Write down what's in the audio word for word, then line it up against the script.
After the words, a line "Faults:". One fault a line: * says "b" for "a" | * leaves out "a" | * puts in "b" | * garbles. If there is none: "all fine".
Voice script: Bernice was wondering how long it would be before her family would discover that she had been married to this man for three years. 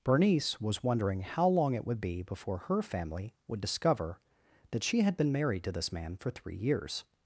Bernice was wondering how long it would be before her family would discover that she had been married to this man for three years.
Faults:
all fine